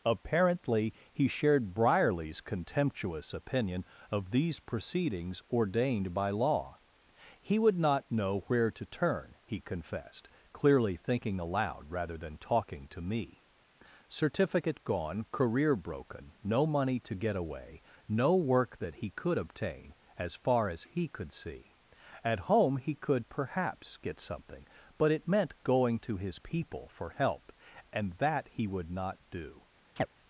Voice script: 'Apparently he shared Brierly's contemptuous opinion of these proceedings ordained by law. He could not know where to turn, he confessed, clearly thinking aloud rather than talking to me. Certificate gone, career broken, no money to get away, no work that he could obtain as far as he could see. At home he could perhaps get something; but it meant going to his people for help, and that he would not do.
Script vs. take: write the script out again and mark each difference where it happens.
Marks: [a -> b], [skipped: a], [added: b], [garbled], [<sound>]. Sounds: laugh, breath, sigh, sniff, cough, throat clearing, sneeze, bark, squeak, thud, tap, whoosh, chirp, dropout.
'Apparently he shared Brierly's contemptuous opinion of these proceedings ordained by law. He [could -> would] not know where to turn, he confessed, clearly thinking aloud rather than talking to me. Certificate gone, career broken, no money to get away, no work that he could obtain as far as he could see. At home he could perhaps get something; but it meant going to his people for help, and that he would not do. [chirp]